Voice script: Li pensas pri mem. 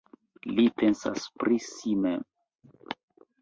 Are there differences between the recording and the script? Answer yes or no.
yes